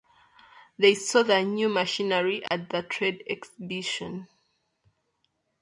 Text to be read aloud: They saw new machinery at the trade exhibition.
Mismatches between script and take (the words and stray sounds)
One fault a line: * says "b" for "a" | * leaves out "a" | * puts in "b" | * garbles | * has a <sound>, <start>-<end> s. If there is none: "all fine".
* puts in "the"
* has a dropout, 2.5-2.5 s